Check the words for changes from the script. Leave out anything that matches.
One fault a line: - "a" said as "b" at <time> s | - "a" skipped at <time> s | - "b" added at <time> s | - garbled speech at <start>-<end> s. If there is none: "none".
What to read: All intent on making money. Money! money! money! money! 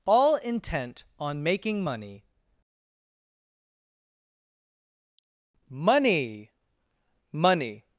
- "money money" skipped at 7.8 s